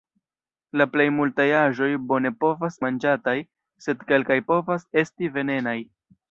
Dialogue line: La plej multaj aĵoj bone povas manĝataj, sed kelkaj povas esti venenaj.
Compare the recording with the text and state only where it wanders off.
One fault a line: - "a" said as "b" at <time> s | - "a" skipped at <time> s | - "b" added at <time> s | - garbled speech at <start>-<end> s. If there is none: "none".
none